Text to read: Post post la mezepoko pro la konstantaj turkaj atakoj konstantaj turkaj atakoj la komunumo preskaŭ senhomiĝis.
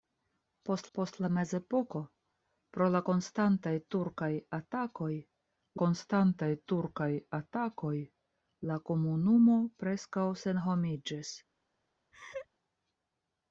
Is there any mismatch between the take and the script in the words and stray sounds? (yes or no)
yes